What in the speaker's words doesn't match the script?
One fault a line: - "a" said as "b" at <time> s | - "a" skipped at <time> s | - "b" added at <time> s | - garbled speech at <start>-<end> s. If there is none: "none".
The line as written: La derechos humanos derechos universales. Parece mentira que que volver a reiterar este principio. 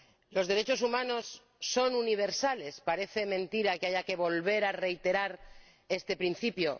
- "La" said as "Los" at 0.3 s
- "derechos" said as "son" at 1.6 s
- "haya" added at 3.9 s